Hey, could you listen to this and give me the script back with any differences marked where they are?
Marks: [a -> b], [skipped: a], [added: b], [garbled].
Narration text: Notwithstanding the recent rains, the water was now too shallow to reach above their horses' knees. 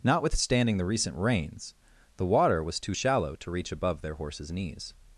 Notwithstanding the recent rains, the water was [skipped: now] too shallow to reach above their horses' knees.